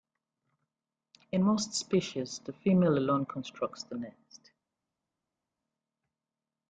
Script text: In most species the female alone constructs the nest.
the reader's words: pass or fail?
pass